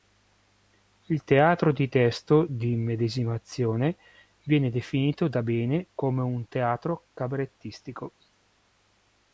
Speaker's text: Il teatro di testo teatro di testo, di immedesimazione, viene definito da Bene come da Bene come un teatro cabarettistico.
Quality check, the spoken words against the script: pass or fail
fail